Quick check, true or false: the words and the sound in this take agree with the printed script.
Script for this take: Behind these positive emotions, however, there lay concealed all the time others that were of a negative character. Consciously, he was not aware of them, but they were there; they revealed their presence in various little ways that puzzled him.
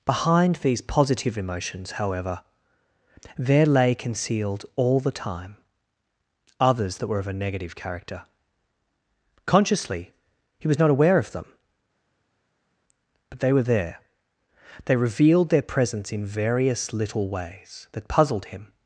true